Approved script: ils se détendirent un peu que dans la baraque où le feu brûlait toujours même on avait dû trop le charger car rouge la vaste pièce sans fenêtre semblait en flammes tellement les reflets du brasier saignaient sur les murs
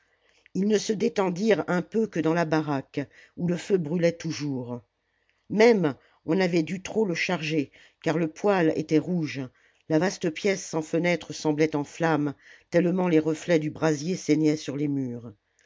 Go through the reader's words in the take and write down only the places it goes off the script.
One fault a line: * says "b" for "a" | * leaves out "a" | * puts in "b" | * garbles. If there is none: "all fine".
* puts in "ne"
* puts in "le poêle était"